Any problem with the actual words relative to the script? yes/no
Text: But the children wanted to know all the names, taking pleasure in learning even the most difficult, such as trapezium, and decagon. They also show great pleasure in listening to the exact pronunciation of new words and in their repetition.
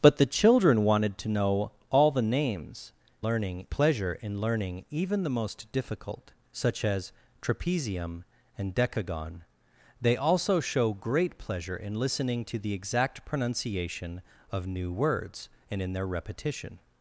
yes